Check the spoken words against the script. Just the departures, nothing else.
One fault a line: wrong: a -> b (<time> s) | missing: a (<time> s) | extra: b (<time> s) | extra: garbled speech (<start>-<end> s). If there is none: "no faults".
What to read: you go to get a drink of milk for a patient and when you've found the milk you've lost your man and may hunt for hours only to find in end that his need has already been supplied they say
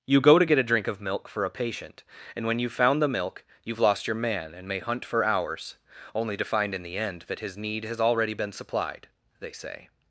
extra: the (6.8 s)